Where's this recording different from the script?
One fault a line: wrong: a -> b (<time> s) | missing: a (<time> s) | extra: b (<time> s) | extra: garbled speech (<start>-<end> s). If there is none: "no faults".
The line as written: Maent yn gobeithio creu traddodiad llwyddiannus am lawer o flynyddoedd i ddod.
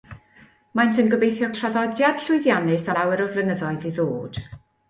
missing: creu (1.5 s)
missing: am (2.9 s)